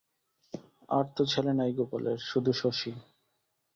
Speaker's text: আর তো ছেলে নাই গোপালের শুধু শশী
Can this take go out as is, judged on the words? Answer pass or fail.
pass